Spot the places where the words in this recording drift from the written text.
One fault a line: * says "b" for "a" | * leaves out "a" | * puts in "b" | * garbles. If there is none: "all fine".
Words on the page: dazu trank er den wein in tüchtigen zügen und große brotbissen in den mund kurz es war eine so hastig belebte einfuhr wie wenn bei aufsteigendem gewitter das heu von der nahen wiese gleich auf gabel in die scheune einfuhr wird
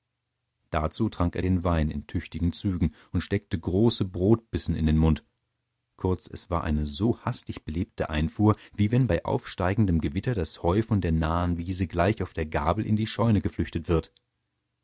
* puts in "steckte"
* puts in "der"
* says "geflüchtet" for "einfuhr"